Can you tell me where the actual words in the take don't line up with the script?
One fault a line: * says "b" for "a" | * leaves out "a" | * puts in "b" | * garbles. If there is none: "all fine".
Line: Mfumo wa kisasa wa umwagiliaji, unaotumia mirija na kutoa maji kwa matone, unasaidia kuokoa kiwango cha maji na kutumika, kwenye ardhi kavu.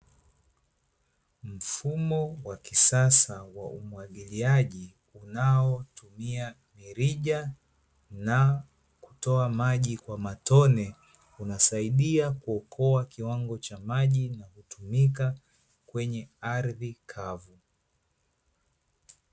all fine